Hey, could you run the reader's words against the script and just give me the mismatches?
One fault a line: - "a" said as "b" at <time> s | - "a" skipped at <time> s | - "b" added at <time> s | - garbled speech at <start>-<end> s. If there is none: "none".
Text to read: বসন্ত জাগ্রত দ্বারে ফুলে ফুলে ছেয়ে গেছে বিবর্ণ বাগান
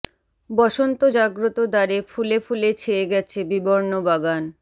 none